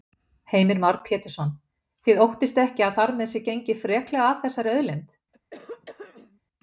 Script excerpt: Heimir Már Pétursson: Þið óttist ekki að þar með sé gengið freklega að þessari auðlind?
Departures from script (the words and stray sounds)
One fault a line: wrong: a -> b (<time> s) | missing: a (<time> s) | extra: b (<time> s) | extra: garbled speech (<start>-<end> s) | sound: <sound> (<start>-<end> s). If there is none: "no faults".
sound: throat clearing (5.3-6.4 s)